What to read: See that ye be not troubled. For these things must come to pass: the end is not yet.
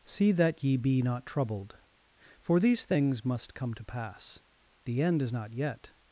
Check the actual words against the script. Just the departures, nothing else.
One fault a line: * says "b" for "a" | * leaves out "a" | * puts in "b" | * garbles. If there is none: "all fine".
all fine